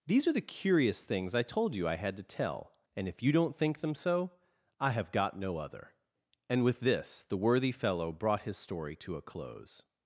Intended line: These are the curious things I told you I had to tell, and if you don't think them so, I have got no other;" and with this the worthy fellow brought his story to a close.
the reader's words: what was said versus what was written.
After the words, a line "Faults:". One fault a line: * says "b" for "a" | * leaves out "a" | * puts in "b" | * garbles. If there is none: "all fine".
These are the curious things I told you I had to tell, and if you don't think them so, I have got no other;" and with this the worthy fellow brought his story to a close.
Faults:
all fine